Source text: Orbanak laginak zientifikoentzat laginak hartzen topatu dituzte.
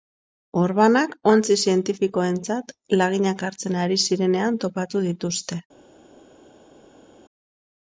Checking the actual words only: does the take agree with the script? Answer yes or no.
no